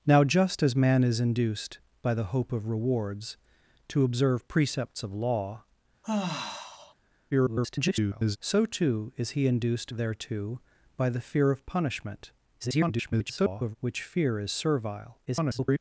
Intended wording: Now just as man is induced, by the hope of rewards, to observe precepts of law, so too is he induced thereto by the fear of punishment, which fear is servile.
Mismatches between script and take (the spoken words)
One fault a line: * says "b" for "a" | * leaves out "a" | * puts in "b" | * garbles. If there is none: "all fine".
* garbles
* garbles
* garbles